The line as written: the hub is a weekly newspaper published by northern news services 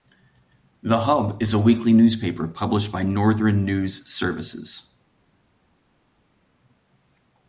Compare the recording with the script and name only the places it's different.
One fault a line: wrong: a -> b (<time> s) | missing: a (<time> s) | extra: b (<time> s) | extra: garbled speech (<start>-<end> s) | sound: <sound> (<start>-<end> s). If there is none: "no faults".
no faults